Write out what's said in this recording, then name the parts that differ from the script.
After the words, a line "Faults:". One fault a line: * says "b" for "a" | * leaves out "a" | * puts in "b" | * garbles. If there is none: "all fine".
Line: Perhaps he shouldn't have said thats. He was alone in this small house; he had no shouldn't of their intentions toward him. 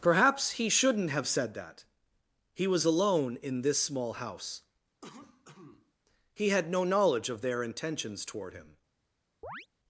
Perhaps he shouldn't have said that. He was alone in this small house; he had no knowledge of their intentions toward him.
Faults:
* says "that" for "thats"
* says "knowledge" for "shouldn't"